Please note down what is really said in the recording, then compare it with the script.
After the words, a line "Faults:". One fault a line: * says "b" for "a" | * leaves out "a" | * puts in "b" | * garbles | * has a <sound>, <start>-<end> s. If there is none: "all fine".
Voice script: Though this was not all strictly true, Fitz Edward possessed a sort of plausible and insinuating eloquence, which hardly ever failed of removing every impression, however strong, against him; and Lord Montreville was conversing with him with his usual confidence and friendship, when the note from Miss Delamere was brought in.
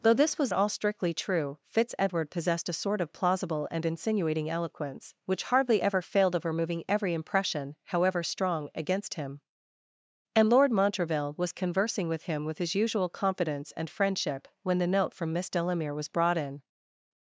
Though this was all strictly true, Fitz Edward possessed a sort of plausible and insinuating eloquence, which hardly ever failed of removing every impression, however strong, against him; and Lord Montreville was conversing with him with his usual confidence and friendship, when the note from Miss Delamere was brought in.
Faults:
* leaves out "not"